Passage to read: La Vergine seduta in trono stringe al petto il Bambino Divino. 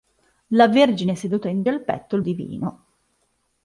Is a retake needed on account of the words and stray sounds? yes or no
yes